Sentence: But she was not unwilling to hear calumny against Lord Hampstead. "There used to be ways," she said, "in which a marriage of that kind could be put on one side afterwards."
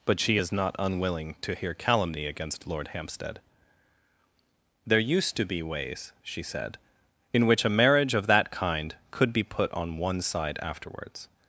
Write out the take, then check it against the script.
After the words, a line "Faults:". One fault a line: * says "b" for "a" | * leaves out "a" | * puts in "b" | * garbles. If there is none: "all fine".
But she is not unwilling to hear calumny against Lord Hampstead. "There used to be ways," she said, "in which a marriage of that kind could be put on one side afterwards."
Faults:
* says "is" for "was"